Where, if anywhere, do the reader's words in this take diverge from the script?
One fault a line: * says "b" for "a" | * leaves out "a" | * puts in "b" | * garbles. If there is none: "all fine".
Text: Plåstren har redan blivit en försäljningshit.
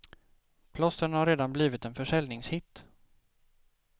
all fine